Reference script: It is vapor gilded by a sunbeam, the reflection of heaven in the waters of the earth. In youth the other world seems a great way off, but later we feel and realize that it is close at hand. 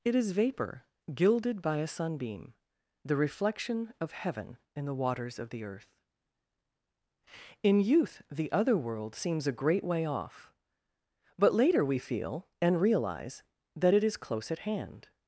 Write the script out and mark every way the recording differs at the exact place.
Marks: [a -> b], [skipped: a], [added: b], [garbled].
It is vapor gilded by a sunbeam, the reflection of heaven in the waters of the earth. In youth the other world seems a great way off, but later we feel and realize that it is close at hand.